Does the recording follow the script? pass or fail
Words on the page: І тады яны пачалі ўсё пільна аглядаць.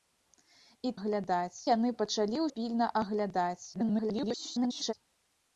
fail